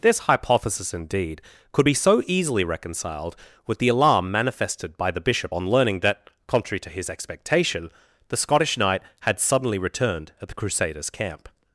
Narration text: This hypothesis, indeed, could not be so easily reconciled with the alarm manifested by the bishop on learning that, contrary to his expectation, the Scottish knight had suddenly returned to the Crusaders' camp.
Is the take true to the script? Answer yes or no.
no